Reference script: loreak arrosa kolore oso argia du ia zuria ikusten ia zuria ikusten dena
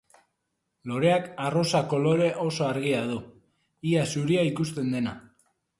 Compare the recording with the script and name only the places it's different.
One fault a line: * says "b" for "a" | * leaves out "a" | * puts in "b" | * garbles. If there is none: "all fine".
* leaves out "ia zuria ikusten"